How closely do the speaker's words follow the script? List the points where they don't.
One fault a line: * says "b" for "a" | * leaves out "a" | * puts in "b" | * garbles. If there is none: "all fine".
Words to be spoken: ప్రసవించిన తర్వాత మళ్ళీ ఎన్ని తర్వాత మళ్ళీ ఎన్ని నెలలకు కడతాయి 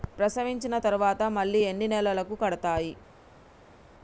* leaves out "తర్వాత మళ్ళీ ఎన్ని"